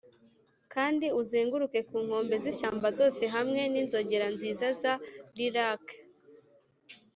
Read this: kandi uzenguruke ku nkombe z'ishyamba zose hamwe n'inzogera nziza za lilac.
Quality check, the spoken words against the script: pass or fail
pass